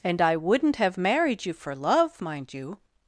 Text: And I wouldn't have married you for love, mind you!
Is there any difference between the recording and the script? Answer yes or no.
no